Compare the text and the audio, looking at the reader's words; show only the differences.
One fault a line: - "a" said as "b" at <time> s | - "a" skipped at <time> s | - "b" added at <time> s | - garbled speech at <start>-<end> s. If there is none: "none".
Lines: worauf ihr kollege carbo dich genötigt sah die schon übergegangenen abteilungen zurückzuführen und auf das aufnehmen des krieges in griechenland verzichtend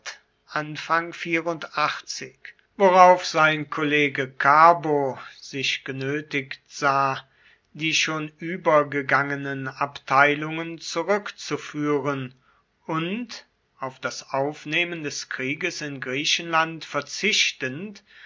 - "ihr" said as "sein" at 3.3 s
- "dich" said as "sich" at 5.4 s